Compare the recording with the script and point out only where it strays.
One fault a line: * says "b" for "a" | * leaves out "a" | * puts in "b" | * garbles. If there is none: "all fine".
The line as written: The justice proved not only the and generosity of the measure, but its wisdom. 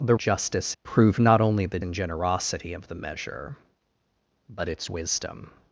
all fine